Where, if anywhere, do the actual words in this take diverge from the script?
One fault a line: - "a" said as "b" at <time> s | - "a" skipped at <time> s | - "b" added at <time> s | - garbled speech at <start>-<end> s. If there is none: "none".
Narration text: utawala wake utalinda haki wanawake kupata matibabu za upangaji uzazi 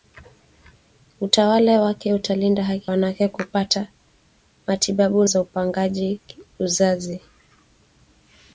none